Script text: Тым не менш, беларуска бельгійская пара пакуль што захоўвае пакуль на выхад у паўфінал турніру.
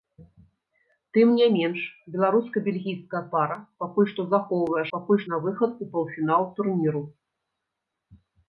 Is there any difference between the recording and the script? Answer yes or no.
no